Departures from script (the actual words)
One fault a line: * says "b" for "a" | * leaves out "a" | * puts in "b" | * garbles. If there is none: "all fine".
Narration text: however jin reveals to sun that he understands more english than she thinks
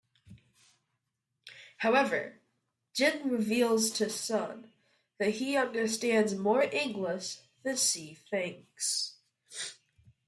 all fine